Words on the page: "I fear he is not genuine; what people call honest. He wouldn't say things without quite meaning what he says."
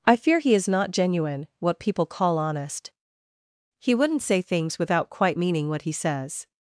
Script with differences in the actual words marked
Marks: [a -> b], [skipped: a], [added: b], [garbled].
"I fear he is not genuine; what people call honest. He wouldn't say things without quite meaning what he says."